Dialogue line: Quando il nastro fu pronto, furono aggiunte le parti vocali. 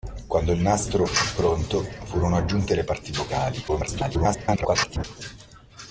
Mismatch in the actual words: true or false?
true